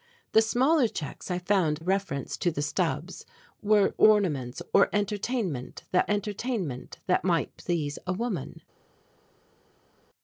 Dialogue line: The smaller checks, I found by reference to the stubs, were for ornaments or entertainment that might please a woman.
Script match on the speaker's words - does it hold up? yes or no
no